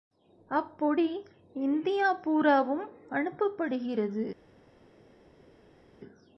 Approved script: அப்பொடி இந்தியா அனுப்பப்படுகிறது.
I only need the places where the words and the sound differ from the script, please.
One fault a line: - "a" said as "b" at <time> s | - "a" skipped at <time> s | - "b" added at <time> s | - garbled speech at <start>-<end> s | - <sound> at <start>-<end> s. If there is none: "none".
- "பூராவும்" added at 2.1 s